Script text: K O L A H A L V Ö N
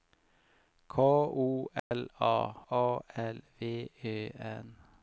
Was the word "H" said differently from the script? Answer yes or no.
yes